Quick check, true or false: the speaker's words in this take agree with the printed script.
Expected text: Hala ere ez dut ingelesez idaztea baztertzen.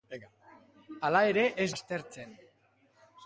false